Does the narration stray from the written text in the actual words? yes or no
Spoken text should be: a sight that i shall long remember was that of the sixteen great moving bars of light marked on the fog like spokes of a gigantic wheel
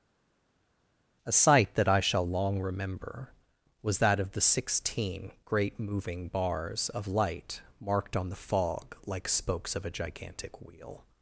no